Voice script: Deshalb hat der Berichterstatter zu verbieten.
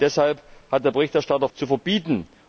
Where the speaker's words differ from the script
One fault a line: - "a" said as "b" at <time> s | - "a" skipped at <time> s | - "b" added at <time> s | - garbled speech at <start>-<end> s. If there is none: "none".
none